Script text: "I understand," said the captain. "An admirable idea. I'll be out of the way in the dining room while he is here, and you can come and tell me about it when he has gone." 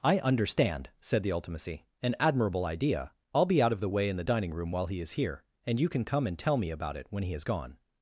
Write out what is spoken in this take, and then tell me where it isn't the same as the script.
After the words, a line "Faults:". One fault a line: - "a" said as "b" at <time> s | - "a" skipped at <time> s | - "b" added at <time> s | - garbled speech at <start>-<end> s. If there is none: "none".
"I understand," said the ultimacy. "An admirable idea. I'll be out of the way in the dining room while he is here, and you can come and tell me about it when he has gone."
Faults:
- "captain" said as "ultimacy" at 1.3 s